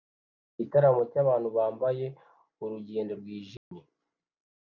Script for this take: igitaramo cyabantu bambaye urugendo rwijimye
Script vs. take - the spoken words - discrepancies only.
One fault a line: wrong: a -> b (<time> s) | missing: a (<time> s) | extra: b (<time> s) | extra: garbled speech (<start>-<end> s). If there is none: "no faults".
no faults